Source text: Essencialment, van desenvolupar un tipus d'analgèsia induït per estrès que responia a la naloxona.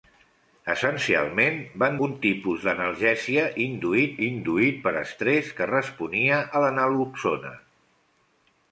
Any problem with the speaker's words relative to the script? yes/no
yes